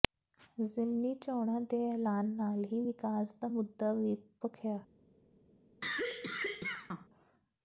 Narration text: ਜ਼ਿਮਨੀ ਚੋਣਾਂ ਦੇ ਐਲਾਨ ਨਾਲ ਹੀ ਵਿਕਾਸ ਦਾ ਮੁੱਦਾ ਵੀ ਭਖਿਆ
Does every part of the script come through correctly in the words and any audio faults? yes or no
no